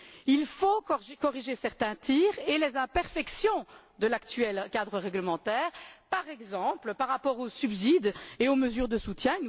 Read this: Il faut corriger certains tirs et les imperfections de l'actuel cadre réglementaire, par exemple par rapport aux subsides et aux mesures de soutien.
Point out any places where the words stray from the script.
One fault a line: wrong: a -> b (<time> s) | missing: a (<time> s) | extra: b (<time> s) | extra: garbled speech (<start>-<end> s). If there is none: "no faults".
no faults